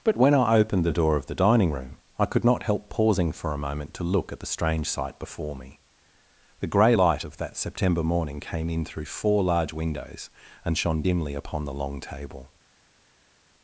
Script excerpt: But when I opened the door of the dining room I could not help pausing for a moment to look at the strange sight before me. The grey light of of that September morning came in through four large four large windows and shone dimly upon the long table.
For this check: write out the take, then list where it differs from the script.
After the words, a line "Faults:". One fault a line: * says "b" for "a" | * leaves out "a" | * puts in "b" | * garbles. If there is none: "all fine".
But when I opened the door of the dining room I could not help pausing for a moment to look at the strange sight before me. The grey light of that September morning came in through four large windows and shone dimly upon the long table.
Faults:
* leaves out "of"
* leaves out "four large"